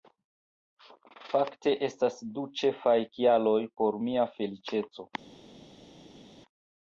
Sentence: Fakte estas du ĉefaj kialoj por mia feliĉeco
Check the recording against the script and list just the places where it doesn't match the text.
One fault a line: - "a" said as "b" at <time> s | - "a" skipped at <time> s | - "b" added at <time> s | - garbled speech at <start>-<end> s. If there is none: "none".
none